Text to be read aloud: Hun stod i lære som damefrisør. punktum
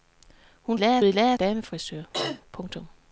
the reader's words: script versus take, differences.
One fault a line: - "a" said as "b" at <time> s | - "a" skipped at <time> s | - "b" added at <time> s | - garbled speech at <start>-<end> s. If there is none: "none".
- "stod" said as "lære" at 0.8 s
- "som" skipped at 1.4 s